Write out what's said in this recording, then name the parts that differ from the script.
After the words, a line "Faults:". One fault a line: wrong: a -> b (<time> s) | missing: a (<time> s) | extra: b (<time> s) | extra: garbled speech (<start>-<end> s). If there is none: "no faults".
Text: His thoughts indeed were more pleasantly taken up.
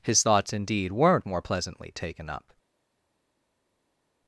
His thoughts indeed weren't more pleasantly taken up.
Faults:
wrong: were -> weren't (0.9 s)